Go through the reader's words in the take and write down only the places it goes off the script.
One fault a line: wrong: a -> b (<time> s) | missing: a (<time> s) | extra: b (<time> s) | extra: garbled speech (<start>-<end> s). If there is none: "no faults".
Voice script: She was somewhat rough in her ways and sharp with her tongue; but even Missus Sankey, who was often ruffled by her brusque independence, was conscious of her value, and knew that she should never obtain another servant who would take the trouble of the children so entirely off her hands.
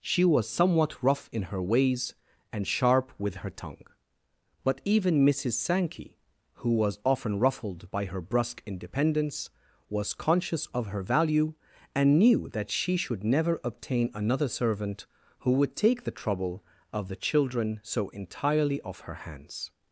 no faults